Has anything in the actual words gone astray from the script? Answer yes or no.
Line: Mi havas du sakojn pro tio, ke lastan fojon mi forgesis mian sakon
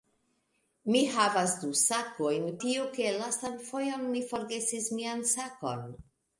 yes